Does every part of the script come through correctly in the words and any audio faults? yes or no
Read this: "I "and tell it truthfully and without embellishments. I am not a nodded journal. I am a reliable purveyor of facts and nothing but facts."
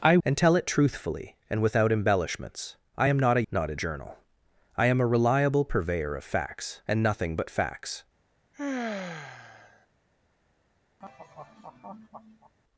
no